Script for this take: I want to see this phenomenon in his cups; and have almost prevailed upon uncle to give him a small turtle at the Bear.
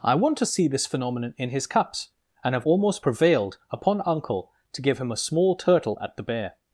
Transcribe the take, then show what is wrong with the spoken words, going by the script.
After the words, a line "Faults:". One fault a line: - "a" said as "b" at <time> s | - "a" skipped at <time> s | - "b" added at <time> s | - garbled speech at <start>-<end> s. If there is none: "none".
I want to see this phenomenon in his cups; and have almost prevailed upon uncle to give him a small turtle at the Bear.
Faults:
none